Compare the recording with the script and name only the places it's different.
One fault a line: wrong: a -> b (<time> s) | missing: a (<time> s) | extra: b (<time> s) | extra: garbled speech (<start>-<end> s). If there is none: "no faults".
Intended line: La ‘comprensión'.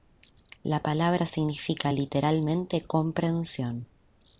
extra: palabra significa literalmente (0.8 s)